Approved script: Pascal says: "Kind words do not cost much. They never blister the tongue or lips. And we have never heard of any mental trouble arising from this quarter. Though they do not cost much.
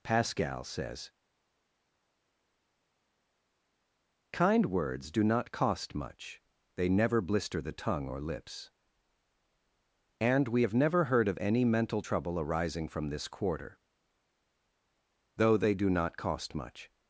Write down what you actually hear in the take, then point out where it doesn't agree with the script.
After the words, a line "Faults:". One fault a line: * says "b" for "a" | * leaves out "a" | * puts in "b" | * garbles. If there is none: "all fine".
Pascal says: "Kind words do not cost much. They never blister the tongue or lips. And we have never heard of any mental trouble arising from this quarter. Though they do not cost much.
Faults:
all fine